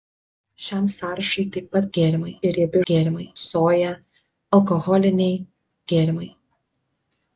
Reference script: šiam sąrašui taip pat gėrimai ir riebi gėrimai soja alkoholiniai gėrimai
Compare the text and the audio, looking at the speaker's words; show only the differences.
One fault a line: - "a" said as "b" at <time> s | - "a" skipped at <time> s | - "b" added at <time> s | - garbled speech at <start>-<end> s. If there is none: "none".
none